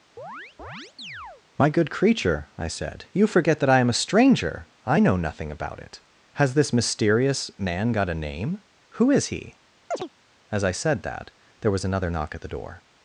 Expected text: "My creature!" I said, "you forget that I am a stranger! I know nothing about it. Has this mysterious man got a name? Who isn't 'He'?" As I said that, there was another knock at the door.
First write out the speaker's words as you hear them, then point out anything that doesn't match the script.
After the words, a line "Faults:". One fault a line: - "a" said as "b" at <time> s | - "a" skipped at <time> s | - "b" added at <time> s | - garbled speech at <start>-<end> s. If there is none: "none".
"My good creature!" I said, "you forget that I am a stranger! I know nothing about it. Has this mysterious man got a name? Who is 'He'?" As I said that, there was another knock at the door.
Faults:
- "good" added at 1.7 s
- "isn't" said as "is" at 9.1 s